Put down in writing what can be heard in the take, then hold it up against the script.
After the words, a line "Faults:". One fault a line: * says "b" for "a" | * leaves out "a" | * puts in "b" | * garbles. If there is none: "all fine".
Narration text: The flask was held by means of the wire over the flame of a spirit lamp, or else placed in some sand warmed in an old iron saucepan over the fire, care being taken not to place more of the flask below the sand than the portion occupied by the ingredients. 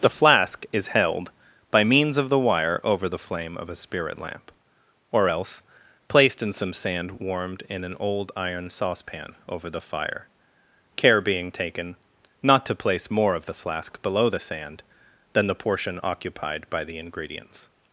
The flask is held by means of the wire over the flame of a spirit lamp, or else placed in some sand warmed in an old iron saucepan over the fire, care being taken not to place more of the flask below the sand than the portion occupied by the ingredients.
Faults:
* says "is" for "was"